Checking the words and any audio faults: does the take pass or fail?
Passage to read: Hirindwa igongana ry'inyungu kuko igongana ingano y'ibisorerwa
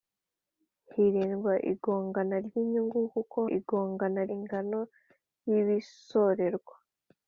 pass